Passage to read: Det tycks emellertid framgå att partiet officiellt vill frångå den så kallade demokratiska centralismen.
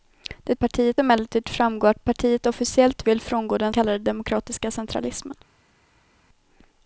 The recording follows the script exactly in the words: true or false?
false